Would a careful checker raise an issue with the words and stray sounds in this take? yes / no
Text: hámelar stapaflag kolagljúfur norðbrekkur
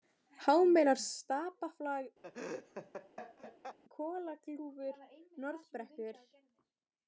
yes